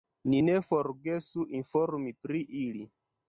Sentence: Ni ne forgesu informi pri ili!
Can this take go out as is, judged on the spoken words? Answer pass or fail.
pass